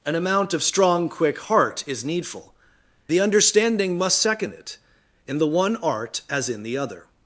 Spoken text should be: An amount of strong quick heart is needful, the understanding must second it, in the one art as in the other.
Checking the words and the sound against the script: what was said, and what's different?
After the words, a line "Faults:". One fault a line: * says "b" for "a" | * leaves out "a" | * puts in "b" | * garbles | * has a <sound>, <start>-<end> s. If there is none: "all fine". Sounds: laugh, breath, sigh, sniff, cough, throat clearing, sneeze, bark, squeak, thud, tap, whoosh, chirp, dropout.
An amount of strong quick heart is needful, the understanding must second it, in the one art as in the other.
Faults:
all fine